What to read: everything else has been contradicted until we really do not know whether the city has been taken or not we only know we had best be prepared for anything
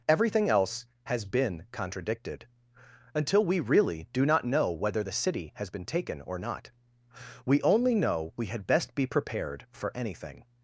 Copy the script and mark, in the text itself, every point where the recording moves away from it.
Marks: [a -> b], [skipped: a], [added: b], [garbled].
everything else has been contradicted until we really do not know whether the city has been taken or not we only know we had best be prepared for anything